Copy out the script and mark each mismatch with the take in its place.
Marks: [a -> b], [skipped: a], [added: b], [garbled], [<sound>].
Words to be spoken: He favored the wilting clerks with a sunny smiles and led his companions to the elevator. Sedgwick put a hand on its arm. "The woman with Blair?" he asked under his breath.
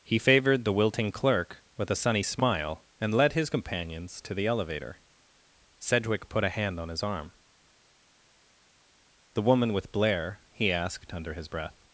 He favored the wilting [clerks -> clerk] with a sunny [smiles -> smile] and led his companions to the elevator. Sedgwick put a hand on [its -> his] arm. "The woman with Blair?" he asked under his breath.